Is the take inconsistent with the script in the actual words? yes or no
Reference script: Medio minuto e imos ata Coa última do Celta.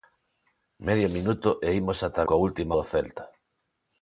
no